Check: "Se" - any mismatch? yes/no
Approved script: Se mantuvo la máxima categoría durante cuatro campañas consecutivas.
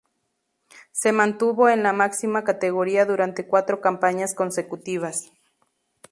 no